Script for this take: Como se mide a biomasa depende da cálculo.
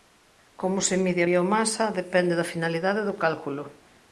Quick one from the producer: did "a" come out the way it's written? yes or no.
yes